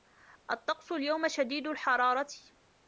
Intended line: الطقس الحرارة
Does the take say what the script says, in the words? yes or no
no